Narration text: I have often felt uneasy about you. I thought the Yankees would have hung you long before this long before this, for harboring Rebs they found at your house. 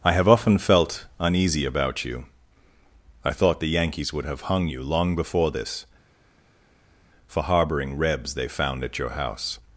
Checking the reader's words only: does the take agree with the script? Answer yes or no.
no